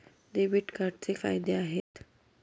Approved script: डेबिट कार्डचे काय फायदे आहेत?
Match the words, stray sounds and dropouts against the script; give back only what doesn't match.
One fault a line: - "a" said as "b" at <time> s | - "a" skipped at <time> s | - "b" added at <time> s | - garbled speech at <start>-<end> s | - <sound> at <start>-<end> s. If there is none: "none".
- "काय" skipped at 1.1 s
- dropout at 1.8-1.9 s